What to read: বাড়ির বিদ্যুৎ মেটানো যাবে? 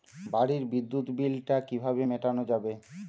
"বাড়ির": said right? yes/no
yes